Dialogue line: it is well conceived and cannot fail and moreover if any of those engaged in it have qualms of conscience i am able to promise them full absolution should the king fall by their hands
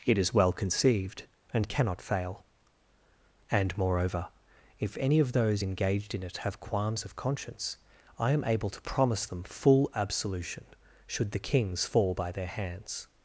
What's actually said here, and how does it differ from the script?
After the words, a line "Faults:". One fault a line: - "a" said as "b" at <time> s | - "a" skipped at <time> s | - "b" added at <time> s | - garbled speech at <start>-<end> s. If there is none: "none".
it is well conceived and cannot fail and moreover if any of those engaged in it have qualms of conscience i am able to promise them full absolution should the kings fall by their hands
Faults:
- "king" said as "kings" at 11.4 s